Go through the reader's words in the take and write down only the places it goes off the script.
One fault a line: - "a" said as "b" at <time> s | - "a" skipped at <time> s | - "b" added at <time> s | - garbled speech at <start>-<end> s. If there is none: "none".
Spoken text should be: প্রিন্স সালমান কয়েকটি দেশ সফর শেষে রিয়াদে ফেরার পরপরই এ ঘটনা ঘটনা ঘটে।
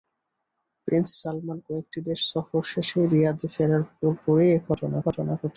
none